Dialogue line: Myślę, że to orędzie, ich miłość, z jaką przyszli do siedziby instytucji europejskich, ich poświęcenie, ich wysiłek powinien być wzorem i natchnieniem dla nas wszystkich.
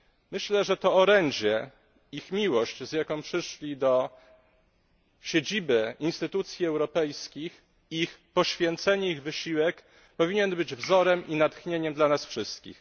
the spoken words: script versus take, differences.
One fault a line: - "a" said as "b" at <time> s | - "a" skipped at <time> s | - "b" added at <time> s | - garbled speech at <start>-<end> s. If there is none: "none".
none